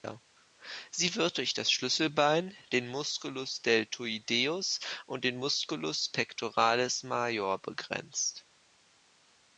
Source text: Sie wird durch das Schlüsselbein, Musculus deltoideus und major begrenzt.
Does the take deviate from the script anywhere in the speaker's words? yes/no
yes